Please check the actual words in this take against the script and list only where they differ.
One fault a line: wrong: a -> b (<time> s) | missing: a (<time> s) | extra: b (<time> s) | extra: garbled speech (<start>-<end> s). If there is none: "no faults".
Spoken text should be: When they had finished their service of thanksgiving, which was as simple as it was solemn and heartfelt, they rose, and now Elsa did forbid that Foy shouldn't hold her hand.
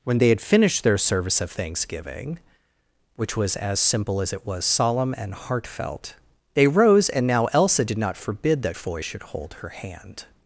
extra: not (8.0 s)
wrong: shouldn't -> should (9.0 s)